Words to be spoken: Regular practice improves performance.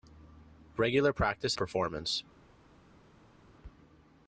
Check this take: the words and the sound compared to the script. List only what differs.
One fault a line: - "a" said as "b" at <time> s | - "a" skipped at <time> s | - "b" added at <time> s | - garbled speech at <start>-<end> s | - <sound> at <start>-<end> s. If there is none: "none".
- "improves" skipped at 1.6 s